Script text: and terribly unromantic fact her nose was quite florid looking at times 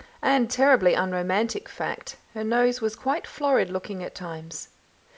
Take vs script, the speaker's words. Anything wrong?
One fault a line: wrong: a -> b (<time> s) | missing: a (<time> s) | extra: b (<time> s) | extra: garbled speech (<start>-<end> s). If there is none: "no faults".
no faults